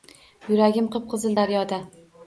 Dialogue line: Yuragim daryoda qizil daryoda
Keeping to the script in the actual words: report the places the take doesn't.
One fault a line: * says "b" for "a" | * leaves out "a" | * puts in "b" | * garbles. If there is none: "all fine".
* says "qip" for "daryoda"